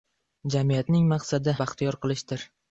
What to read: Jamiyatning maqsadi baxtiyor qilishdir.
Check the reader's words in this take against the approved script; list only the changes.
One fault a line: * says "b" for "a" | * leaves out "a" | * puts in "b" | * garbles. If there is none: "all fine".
all fine